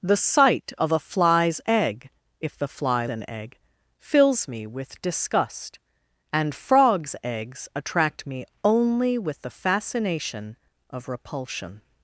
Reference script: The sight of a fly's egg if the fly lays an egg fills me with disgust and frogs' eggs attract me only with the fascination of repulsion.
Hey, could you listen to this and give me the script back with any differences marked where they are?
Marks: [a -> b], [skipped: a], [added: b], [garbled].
The sight of a fly's egg if the fly [skipped: lays] an egg fills me with disgust and frogs' eggs attract me only with the fascination of repulsion.